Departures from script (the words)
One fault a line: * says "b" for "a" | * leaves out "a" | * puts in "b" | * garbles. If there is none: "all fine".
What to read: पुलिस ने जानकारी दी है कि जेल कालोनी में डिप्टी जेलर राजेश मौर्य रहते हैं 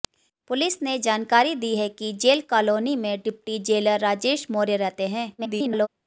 * garbles